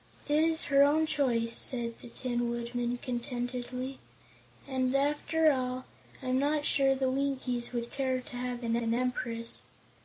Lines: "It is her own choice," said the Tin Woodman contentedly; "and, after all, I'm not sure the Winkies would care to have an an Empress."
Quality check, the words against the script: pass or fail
pass